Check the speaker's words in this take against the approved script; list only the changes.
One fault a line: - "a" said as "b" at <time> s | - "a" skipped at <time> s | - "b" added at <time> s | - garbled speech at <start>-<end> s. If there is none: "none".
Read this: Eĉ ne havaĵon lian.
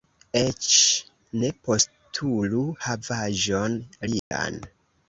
- "postulu" added at 1.7 s